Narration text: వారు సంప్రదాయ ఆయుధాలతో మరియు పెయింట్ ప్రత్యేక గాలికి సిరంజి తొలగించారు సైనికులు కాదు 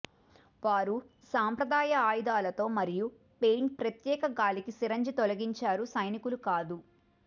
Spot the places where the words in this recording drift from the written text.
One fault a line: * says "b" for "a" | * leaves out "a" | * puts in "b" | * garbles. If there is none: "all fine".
all fine